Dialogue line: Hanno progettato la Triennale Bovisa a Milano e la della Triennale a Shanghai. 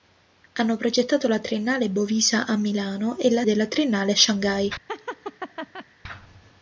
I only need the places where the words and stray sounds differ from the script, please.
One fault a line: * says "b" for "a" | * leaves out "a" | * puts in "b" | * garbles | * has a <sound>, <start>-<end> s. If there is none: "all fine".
* has a laugh, 4.9-5.9 s